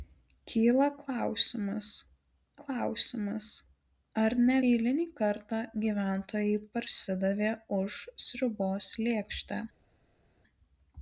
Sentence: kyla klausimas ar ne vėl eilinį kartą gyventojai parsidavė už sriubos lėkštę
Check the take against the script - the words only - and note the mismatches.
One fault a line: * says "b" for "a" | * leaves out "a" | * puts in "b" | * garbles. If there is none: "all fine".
* puts in "klausimas"
* leaves out "vėl"